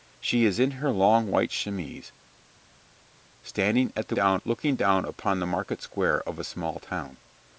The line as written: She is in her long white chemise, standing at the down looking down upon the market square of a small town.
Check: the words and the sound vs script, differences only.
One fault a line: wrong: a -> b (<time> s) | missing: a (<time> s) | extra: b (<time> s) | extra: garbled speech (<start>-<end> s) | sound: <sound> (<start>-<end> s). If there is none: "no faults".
no faults